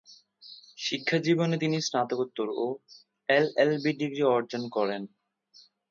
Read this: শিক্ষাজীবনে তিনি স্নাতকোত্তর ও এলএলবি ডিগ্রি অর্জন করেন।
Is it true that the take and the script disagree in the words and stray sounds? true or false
false